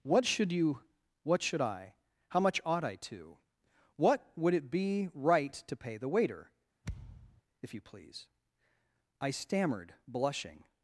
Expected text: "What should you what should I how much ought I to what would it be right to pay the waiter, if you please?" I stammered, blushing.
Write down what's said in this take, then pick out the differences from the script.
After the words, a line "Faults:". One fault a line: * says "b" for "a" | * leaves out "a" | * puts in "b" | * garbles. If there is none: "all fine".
"What should you what should I how much ought I to what would it be right to pay the waiter, if you please?" I stammered, blushing.
Faults:
all fine